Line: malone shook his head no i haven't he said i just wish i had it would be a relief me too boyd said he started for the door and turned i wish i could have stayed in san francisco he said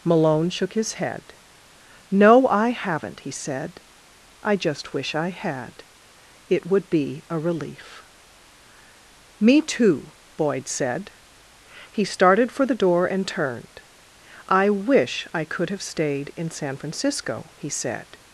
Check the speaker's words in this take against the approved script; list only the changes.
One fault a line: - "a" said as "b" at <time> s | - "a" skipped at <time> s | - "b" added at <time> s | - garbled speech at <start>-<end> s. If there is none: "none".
none